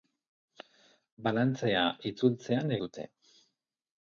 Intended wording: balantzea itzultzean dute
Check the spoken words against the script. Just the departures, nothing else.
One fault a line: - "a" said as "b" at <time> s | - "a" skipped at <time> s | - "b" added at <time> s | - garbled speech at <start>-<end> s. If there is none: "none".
none